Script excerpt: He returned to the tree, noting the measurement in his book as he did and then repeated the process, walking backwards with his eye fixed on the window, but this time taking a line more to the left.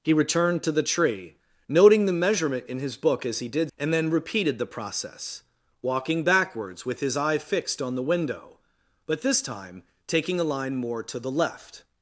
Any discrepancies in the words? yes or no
no